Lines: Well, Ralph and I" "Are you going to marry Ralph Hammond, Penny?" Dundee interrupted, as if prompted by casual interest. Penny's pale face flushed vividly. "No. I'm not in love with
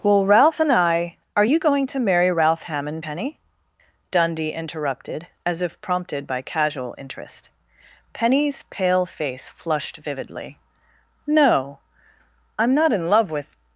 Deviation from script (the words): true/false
false